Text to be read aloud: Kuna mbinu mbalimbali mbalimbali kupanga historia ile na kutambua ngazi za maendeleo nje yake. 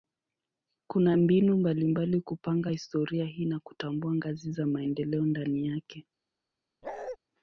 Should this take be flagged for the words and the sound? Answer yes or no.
yes